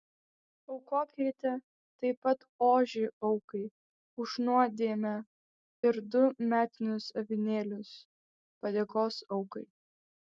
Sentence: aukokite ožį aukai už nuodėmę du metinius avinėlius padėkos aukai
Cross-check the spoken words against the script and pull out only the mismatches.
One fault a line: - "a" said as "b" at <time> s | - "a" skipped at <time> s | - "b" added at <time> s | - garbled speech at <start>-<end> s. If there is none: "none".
- "taip pat" added at 2.0 s
- "ir" added at 5.9 s